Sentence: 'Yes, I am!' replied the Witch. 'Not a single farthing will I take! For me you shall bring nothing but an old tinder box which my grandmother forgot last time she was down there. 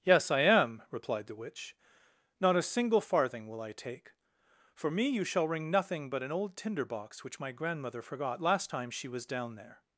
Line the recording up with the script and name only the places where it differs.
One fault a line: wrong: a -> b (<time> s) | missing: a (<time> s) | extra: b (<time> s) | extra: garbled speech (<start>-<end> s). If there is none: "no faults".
wrong: bring -> ring (5.5 s)